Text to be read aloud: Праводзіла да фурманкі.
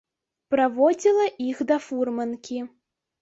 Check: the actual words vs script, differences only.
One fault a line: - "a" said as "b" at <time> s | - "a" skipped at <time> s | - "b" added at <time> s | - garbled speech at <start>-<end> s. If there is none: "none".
- "іх" added at 1.5 s